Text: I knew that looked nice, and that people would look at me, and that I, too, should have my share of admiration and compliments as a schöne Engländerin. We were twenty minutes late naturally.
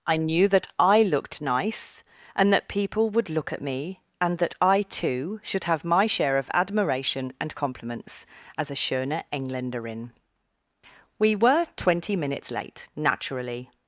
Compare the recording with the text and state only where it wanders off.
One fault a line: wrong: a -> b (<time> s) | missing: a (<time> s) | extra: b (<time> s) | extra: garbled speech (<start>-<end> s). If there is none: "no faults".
extra: I (0.8 s)